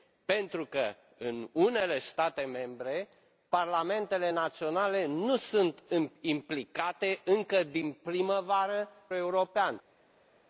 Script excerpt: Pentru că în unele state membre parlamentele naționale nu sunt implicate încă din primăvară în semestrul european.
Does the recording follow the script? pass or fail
fail